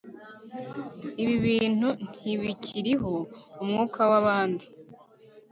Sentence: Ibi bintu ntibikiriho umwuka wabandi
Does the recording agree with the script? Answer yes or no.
yes